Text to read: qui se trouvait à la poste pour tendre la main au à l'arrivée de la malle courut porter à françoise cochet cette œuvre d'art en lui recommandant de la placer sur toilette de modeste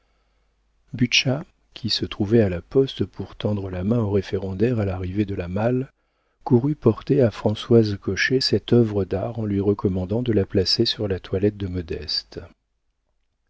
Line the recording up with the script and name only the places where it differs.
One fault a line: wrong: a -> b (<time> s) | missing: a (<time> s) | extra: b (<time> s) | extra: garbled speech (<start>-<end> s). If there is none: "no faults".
extra: référendaire (4.1 s)
extra: la (11.1 s)